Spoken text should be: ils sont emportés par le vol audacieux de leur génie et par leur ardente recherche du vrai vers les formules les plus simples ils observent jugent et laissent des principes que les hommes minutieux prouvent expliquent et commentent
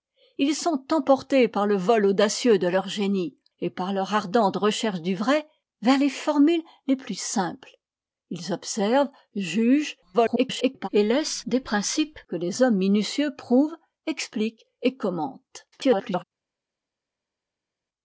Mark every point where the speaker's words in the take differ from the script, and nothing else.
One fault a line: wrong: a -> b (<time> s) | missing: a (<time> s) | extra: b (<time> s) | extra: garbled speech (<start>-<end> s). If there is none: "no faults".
extra: garbled speech (10.1-10.9 s)
extra: garbled speech (15.7-16.2 s)